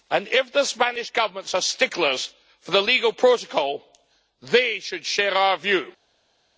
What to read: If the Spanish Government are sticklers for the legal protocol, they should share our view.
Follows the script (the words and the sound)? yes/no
yes